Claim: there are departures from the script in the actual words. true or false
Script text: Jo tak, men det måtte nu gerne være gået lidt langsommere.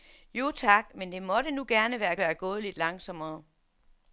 true